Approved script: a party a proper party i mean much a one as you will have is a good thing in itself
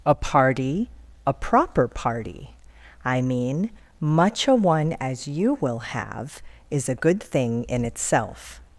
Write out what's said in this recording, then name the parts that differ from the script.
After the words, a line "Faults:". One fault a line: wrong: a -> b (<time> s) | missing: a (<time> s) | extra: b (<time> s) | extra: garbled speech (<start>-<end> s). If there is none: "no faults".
a party a proper party i mean much a one as you will have is a good thing in itself
Faults:
no faults